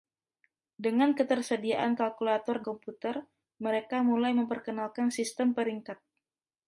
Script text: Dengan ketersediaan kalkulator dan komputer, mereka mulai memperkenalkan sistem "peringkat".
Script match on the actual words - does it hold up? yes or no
no